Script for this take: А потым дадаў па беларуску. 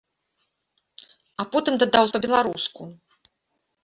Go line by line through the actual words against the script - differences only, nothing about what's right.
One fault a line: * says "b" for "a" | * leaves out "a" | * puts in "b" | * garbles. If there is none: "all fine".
all fine